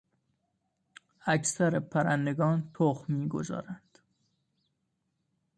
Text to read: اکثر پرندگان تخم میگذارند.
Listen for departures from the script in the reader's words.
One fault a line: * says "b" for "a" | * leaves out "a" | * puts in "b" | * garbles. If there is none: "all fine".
all fine